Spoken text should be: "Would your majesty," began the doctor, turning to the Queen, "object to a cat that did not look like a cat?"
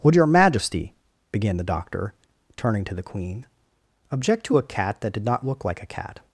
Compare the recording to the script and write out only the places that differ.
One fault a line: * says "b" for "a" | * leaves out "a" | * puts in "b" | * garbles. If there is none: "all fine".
all fine